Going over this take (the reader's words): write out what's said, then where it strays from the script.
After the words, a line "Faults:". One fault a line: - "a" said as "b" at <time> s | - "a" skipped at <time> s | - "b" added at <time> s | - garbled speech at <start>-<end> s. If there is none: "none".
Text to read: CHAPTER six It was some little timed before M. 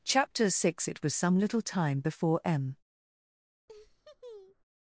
CHAPTER six It was some little time before M.
Faults:
- "timed" said as "time" at 1.6 s